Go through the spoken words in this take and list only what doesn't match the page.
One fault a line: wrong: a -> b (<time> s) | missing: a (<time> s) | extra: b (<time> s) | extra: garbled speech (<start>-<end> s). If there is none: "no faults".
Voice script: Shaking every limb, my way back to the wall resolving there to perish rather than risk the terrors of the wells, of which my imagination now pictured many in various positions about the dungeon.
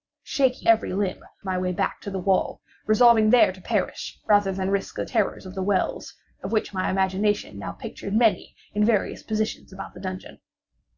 no faults